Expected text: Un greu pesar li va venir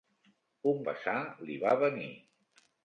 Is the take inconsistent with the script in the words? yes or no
yes